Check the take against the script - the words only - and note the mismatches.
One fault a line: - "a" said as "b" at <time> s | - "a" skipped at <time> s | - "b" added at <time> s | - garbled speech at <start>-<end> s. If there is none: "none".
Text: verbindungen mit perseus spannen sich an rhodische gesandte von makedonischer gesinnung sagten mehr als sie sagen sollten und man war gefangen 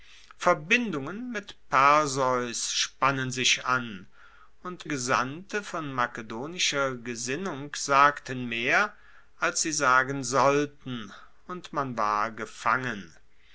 - "rhodische" said as "und" at 4.6 s